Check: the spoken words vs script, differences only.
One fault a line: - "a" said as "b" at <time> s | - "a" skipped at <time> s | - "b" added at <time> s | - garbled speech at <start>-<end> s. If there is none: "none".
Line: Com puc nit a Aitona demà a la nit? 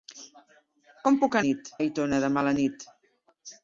none